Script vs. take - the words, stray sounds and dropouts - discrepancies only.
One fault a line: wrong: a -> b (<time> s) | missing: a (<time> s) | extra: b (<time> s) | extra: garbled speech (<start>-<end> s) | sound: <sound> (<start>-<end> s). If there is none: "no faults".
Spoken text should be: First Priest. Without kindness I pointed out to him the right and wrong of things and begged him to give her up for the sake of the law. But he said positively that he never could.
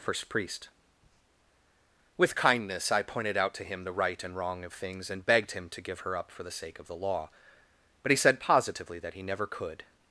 wrong: Without -> With (2.2 s)